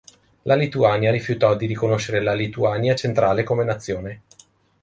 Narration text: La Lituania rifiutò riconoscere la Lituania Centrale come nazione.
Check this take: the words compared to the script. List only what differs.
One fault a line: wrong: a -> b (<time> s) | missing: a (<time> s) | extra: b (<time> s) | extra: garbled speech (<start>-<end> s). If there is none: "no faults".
extra: di (1.6 s)